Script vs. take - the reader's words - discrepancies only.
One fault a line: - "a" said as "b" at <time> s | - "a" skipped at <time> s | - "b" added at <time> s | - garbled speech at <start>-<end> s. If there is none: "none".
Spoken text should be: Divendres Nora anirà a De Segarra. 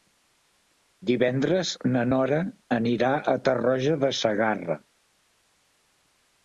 - "na" added at 1.9 s
- "Tarroja" added at 3.5 s